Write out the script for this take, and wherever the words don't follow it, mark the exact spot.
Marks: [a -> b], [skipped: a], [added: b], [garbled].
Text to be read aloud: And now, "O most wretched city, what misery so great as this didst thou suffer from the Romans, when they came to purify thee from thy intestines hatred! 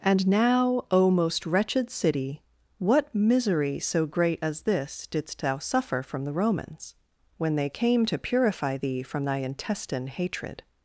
And now, "O most wretched city, what misery so great as this didst thou suffer from the Romans, when they came to purify thee from thy [intestines -> intestine] hatred!